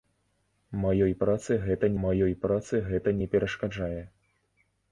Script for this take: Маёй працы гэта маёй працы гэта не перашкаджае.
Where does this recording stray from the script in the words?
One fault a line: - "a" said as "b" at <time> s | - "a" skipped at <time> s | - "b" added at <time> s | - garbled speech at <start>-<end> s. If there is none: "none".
none